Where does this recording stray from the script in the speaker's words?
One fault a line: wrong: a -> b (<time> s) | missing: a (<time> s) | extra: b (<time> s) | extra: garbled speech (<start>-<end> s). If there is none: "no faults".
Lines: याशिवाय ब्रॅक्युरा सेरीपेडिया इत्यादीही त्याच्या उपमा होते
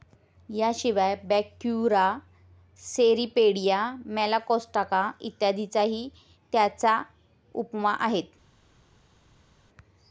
extra: मेलॅकोस्ट्राका (4.1 s)
wrong: होते -> आहेत (8.0 s)